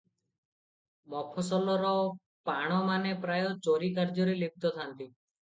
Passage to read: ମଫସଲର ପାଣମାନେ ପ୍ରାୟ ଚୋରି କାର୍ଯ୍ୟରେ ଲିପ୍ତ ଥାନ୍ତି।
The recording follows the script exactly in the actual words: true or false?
true